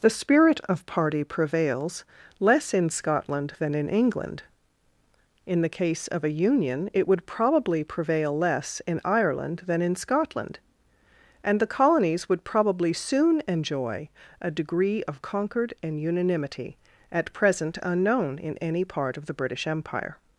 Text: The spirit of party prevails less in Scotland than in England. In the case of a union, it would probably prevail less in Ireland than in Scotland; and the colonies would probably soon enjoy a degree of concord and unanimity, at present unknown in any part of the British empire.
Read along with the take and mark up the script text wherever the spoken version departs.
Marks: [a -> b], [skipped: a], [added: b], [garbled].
The spirit of party prevails less in Scotland than in England. In the case of a union, it would probably prevail less in Ireland than in Scotland; and the colonies would probably soon enjoy a degree of concord and unanimity, at present unknown in any part of the British empire.